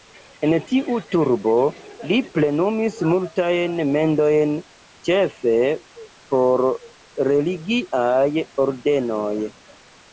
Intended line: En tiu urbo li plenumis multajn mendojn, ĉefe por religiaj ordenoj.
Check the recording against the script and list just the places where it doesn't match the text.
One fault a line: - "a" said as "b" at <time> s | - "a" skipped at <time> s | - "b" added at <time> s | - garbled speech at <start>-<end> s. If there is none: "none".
none